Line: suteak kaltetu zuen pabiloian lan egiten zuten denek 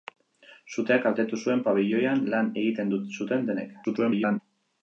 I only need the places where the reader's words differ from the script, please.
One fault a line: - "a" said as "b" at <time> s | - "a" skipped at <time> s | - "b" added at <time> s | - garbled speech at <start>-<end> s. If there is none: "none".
- garbled speech at 3.8-4.4 s